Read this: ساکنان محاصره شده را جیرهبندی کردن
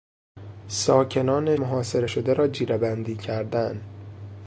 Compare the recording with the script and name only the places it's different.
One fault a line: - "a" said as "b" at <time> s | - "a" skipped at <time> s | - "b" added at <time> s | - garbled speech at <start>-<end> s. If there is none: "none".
none